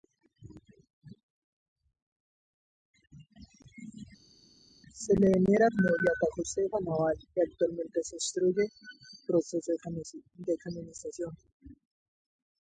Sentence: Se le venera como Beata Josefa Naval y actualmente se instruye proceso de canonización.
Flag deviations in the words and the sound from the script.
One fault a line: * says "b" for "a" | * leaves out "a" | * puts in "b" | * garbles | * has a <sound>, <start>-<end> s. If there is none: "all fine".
all fine